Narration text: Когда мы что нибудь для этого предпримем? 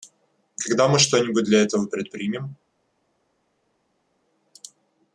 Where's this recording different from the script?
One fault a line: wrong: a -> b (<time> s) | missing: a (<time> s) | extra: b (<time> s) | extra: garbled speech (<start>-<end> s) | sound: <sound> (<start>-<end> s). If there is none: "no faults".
no faults